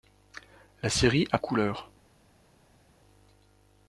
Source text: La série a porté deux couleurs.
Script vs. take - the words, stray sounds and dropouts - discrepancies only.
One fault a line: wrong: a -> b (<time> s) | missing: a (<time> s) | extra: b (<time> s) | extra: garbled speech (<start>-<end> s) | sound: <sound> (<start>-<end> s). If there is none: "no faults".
missing: porté deux (1.4 s)